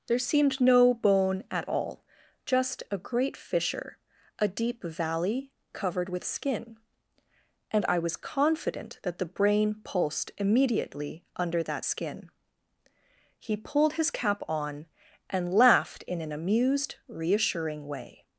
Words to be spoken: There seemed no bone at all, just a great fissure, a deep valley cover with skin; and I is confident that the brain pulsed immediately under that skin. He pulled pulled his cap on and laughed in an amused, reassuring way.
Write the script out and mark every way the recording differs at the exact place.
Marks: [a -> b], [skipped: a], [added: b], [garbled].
There seemed no bone at all, just a great fissure, a deep valley [cover -> covered] with skin; and I [is -> was] confident that the brain pulsed immediately under that skin. He pulled [skipped: pulled] his cap on and laughed in an amused, reassuring way.